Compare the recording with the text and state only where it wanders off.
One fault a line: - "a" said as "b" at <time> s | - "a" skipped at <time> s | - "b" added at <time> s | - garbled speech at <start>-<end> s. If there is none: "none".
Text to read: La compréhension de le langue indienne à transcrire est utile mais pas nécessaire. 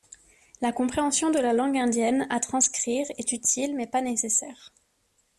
- "le" said as "la" at 1.4 s